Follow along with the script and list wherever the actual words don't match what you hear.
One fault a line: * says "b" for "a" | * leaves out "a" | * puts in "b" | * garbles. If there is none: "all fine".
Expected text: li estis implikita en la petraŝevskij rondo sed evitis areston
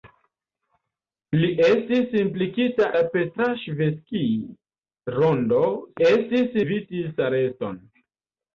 * leaves out "en"
* says "estis" for "sed"